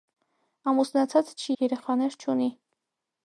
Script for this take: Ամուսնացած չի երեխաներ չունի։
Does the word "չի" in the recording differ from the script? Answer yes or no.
no